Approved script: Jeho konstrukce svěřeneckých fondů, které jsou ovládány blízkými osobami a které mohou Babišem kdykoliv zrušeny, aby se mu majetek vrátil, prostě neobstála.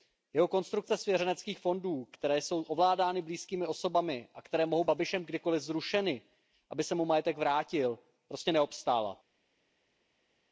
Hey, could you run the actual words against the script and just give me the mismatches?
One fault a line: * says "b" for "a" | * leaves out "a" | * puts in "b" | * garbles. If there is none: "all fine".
all fine